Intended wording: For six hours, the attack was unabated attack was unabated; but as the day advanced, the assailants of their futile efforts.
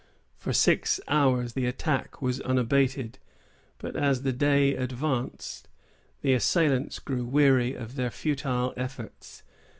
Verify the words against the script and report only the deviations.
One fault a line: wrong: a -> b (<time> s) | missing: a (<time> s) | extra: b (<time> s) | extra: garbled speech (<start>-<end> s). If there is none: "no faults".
missing: attack was unabated (3.2 s)
extra: grew weary (7.0 s)